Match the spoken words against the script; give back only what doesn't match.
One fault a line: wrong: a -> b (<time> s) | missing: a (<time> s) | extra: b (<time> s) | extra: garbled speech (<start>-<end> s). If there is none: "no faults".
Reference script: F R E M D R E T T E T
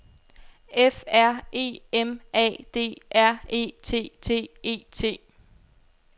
extra: A (2.3 s)